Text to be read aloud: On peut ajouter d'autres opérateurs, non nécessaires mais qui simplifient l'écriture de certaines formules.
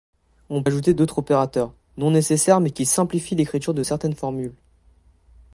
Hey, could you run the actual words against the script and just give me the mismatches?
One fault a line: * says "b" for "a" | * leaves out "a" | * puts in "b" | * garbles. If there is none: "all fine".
* leaves out "peut"